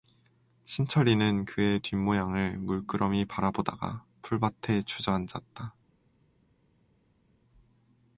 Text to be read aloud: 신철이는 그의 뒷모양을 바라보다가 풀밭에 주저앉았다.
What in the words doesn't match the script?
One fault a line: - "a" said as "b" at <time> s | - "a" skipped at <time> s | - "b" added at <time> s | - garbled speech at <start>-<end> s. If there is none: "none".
- "물끄러미" added at 2.6 s